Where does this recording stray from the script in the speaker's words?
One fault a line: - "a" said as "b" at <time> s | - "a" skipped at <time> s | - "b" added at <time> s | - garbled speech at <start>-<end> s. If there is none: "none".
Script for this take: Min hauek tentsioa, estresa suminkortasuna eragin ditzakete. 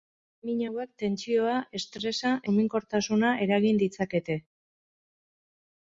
none